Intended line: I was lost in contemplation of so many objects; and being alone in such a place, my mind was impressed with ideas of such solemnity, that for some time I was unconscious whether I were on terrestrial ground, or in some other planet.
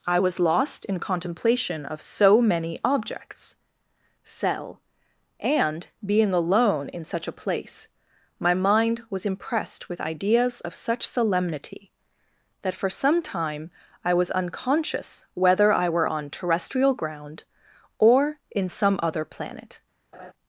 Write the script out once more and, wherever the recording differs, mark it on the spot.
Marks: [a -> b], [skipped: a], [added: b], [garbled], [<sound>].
I was lost in contemplation of so many objects; [added: cell] and being alone in such a place, my mind was impressed with ideas of such solemnity, that for some time I was unconscious whether I were on terrestrial ground, or in some other planet. [laugh]